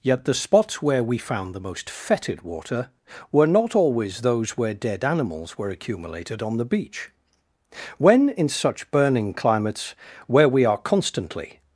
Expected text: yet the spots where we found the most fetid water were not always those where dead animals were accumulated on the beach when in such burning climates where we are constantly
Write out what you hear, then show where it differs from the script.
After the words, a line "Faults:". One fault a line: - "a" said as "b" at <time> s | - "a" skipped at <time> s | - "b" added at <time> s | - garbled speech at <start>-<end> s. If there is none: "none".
yet the spots where we found the most fetid water were not always those where dead animals were accumulated on the beach when in such burning climates where we are constantly
Faults:
none